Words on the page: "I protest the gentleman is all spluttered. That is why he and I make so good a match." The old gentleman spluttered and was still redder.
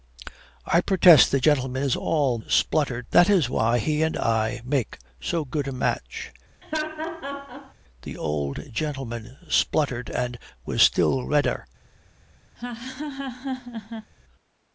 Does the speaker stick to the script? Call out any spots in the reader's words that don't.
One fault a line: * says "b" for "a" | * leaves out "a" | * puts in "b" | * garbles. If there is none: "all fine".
all fine